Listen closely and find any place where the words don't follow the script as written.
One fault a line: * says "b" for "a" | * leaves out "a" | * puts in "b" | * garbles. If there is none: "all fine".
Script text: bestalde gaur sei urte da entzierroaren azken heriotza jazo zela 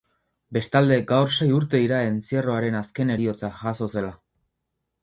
* says "dira" for "da"